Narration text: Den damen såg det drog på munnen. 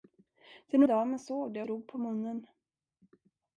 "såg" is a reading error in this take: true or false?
false